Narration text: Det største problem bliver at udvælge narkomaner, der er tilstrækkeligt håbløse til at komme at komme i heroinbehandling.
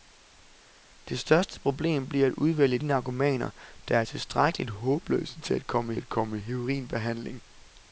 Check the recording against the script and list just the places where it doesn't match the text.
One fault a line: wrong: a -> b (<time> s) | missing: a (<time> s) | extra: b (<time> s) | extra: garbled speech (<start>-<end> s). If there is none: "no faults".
no faults